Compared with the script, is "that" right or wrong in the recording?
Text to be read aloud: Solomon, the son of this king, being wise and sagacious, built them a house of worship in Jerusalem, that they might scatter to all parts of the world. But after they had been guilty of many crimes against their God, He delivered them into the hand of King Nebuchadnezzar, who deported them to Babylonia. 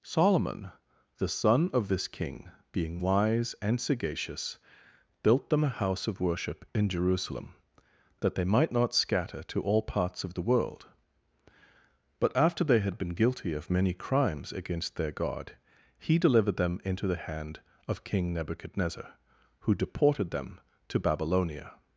right